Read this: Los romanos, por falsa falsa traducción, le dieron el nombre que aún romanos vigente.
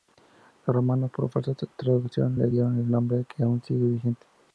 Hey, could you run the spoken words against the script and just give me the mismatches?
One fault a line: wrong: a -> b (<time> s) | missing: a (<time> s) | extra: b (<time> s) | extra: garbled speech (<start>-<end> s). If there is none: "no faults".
missing: falsa (1.5 s)
wrong: romanos -> sigue (3.6 s)